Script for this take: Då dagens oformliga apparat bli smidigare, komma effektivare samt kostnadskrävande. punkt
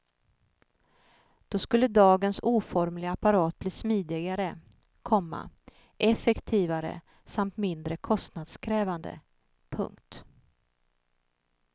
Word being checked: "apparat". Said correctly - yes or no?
yes